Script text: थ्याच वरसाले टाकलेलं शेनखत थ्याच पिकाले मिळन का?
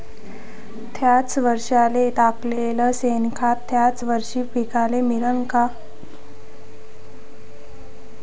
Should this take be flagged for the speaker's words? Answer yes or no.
yes